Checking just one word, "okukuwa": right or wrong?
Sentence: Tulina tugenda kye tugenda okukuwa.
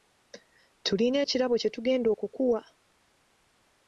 right